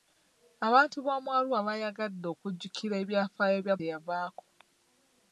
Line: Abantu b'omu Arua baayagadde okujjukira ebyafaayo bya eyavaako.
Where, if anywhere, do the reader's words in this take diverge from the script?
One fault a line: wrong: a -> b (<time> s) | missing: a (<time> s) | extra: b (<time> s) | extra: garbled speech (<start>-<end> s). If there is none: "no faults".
no faults